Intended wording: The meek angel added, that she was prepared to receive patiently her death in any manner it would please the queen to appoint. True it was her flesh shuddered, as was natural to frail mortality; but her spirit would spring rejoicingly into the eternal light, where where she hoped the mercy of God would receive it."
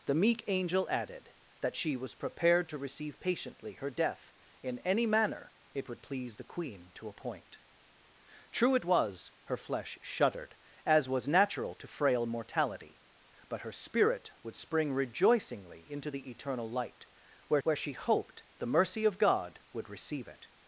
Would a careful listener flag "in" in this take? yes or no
no